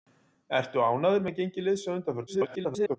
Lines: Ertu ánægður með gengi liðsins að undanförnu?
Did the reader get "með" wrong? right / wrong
right